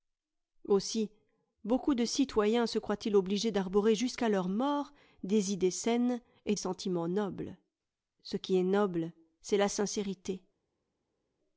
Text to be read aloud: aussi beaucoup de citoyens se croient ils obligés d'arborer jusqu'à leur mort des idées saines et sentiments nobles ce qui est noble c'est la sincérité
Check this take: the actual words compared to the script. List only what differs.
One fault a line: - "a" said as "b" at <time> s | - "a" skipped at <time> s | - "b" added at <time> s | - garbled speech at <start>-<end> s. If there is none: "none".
none